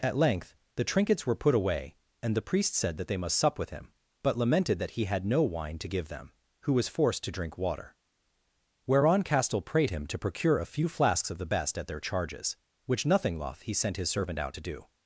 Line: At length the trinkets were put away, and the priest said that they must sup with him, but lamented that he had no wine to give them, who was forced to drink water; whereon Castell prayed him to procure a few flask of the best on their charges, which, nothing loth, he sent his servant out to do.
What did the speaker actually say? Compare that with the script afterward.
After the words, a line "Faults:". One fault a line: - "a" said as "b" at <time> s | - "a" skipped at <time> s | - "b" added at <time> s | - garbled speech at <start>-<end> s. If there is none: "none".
At length the trinkets were put away, and the priest said that they must sup with him, but lamented that he had no wine to give them, who was forced to drink water; whereon Castell prayed him to procure a few flasks of the best at their charges, which, nothing loth, he sent his servant out to do.
Faults:
- "flask" said as "flasks" at 10.9 s
- "on" said as "at" at 11.8 s